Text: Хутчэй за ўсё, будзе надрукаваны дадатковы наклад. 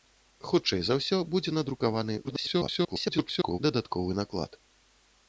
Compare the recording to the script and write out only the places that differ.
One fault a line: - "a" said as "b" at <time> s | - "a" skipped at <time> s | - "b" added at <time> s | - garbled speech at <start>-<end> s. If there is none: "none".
- garbled speech at 2.2-3.6 s